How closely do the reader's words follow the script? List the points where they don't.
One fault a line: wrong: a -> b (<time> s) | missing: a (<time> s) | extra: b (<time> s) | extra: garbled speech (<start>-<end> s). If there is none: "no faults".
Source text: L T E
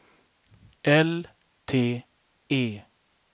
no faults